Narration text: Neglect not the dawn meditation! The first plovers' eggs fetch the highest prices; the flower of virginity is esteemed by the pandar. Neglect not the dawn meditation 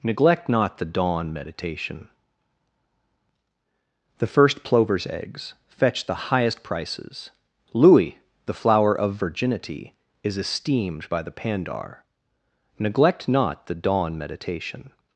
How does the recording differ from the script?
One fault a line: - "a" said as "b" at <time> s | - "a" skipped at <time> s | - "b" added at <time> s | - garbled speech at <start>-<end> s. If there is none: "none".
- "louis" added at 7.7 s